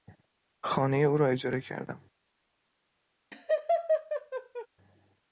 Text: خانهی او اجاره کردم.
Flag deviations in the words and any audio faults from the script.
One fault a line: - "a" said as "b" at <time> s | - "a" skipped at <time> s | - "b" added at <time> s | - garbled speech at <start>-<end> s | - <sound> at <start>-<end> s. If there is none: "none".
- "را" added at 1.2 s
- laugh at 3.3-4.7 s